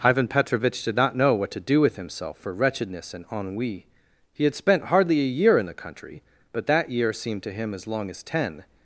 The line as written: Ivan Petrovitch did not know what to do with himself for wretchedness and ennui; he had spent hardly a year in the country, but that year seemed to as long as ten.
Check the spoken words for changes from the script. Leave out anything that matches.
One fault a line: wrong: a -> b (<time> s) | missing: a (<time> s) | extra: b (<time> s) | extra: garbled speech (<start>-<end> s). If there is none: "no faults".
extra: him (7.5 s)